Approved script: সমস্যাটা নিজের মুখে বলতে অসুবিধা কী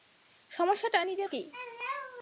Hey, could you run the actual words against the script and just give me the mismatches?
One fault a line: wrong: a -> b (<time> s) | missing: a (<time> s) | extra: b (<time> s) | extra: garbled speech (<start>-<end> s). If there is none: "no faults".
missing: মুখে বলতে অসুবিধা (1.3 s)